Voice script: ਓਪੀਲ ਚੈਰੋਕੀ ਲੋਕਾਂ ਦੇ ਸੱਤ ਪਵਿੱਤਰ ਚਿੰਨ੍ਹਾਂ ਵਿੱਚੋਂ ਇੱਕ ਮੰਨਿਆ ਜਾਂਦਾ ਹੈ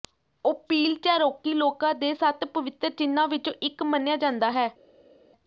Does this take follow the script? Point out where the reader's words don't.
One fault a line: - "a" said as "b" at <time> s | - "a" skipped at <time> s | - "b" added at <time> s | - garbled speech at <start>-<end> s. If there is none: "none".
none